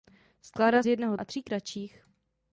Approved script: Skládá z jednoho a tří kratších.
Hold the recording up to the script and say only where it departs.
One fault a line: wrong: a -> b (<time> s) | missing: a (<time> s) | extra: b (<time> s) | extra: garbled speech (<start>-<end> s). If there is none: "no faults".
no faults